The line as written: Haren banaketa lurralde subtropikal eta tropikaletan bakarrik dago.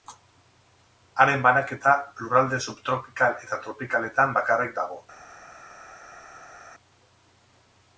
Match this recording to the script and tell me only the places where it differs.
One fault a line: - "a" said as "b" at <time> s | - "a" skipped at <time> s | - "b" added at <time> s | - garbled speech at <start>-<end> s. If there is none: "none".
none